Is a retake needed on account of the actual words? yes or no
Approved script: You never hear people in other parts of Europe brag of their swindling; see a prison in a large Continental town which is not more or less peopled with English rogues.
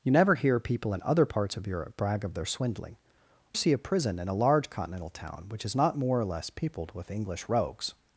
no